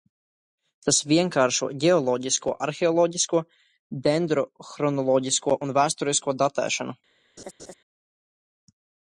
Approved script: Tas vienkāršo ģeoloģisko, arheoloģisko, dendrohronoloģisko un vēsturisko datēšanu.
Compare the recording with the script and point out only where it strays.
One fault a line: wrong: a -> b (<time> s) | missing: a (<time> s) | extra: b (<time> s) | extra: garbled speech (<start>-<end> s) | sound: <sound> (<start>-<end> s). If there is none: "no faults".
sound: laugh (7.4-7.7 s)